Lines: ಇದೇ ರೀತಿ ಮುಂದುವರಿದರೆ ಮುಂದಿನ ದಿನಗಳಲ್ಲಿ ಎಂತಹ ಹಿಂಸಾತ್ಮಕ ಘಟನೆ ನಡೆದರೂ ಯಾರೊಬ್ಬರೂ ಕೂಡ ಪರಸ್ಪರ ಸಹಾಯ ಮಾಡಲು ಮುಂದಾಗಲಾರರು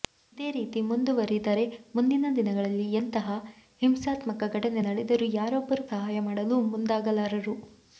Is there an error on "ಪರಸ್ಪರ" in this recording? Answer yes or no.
yes